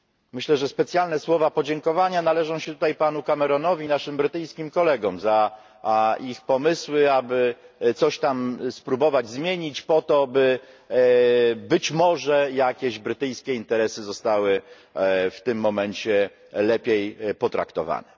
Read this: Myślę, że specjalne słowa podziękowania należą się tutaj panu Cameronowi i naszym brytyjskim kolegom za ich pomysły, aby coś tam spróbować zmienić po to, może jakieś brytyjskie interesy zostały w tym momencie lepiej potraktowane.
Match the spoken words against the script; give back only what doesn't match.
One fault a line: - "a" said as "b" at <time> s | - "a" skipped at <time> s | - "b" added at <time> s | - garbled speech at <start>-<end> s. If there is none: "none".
- "by być" added at 10.3 s